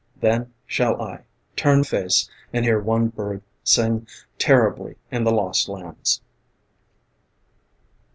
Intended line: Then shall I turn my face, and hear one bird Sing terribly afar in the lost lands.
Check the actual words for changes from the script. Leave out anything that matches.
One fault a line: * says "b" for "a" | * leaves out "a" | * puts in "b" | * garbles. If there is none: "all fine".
* leaves out "my"
* leaves out "afar"